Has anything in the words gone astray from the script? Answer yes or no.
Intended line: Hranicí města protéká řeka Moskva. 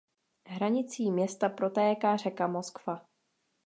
no